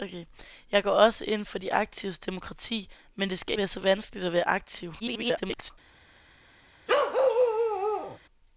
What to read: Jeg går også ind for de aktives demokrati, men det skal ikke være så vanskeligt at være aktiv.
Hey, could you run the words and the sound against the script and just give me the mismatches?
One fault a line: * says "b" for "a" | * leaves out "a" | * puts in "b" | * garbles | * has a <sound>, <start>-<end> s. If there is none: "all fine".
* leaves out "ikke"
* garbles
* has a bark, 6.9-8.2 s